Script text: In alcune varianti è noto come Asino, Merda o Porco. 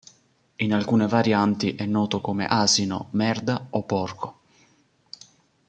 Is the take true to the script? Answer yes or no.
yes